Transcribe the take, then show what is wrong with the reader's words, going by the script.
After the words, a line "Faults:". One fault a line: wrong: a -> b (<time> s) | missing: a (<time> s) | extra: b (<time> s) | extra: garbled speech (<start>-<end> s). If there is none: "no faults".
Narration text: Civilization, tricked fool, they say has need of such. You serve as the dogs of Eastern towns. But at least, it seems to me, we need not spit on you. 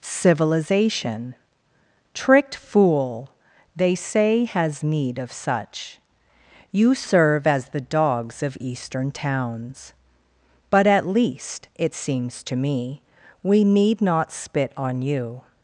Civilization, tricked fool, they say has need of such. You serve as the dogs of Eastern towns. But at least, it seems to me, we need not spit on you.
Faults:
no faults